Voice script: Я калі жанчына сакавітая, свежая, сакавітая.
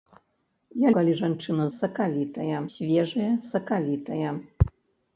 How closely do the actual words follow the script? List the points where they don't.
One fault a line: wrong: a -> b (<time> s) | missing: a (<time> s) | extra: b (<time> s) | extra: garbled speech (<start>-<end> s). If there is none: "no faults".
no faults